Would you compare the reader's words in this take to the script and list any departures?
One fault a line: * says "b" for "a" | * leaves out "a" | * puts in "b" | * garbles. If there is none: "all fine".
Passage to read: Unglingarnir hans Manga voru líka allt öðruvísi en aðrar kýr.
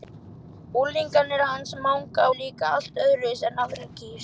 * leaves out "voru"